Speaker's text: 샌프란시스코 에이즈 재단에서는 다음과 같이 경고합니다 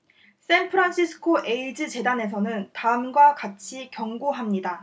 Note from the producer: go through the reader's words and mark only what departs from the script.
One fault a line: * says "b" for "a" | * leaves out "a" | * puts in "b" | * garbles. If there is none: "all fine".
all fine